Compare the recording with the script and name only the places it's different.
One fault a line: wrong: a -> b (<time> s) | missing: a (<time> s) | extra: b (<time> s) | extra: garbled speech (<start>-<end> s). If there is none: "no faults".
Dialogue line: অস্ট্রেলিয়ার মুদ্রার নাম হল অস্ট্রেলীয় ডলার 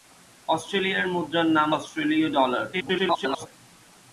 missing: হল (1.7 s)
extra: garbled speech (2.7-3.5 s)